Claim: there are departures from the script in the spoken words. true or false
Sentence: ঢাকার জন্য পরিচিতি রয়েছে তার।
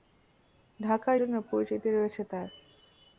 false